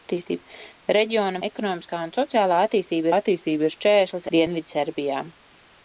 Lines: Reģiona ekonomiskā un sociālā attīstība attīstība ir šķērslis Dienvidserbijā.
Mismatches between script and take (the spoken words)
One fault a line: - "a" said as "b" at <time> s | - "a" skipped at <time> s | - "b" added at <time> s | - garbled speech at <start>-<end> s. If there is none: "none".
none